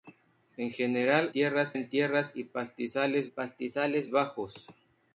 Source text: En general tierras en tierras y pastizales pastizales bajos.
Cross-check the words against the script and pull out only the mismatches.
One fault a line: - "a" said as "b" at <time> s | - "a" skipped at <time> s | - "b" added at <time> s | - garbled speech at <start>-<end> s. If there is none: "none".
none